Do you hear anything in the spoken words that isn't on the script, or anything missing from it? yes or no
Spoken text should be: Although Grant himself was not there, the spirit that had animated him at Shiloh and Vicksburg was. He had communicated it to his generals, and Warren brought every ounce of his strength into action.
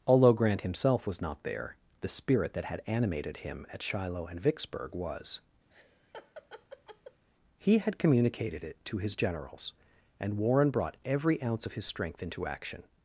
no